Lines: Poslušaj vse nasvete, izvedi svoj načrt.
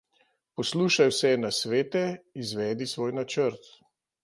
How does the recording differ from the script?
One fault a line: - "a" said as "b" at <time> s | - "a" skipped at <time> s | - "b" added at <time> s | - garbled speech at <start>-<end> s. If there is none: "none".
none